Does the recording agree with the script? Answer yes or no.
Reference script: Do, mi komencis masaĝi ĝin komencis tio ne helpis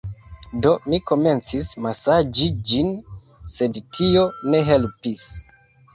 no